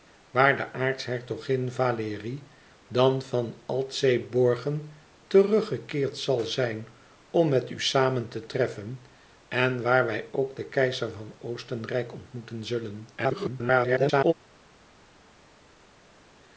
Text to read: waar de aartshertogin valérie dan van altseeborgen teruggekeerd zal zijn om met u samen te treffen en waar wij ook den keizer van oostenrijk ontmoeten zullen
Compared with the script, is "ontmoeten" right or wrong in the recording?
right